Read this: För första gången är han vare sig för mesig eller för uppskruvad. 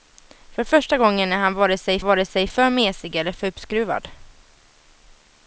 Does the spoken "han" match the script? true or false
true